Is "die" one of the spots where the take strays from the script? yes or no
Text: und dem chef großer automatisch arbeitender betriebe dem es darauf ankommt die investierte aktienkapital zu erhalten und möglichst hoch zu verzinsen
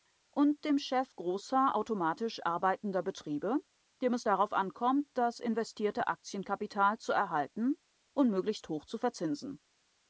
yes